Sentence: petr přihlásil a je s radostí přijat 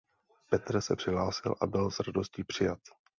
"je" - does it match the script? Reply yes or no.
no